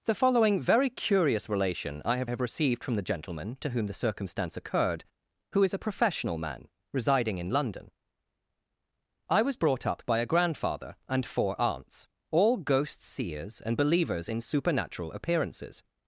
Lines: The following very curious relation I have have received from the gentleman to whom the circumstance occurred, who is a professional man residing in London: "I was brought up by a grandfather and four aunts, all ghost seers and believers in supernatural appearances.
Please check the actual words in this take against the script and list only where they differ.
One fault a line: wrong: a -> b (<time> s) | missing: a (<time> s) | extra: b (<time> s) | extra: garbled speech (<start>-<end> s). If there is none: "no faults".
no faults